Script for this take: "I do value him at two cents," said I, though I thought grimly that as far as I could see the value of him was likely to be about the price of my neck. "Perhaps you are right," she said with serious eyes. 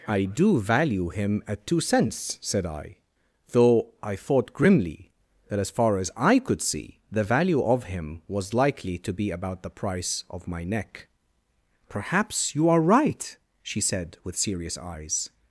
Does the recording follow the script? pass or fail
pass